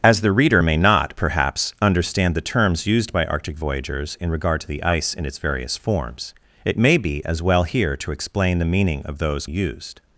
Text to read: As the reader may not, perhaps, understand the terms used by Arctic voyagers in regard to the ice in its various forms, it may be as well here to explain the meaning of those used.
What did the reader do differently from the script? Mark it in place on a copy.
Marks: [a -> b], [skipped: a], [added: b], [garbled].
As the reader may not, perhaps, understand the terms used by Arctic voyagers in regard to the ice in its various forms, it may be as well here to explain the meaning of those used.